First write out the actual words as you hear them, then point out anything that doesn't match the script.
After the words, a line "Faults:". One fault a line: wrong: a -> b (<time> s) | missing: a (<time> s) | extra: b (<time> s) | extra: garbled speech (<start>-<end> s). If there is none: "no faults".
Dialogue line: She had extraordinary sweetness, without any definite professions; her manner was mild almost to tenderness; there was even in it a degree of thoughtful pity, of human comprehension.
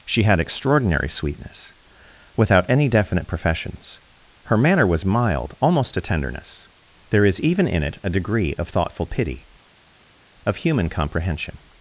She had extraordinary sweetness, without any definite professions; her manner was mild almost to tenderness; there is even in it a degree of thoughtful pity, of human comprehension.
Faults:
wrong: was -> is (7.2 s)